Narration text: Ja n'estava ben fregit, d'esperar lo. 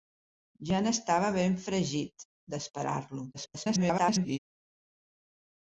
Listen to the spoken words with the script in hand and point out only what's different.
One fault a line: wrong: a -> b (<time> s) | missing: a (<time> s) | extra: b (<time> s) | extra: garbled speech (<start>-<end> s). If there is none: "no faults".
extra: garbled speech (3.3-4.4 s)